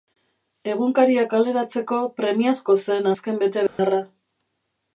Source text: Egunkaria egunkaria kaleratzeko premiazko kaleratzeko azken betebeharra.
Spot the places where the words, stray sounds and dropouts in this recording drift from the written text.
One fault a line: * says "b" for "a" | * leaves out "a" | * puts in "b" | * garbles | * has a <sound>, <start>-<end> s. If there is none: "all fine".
* leaves out "egunkaria"
* says "zen" for "kaleratzeko"
* has a dropout, 3.7-3.8 s